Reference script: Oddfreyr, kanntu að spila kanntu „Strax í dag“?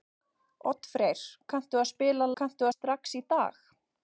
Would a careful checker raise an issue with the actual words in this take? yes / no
no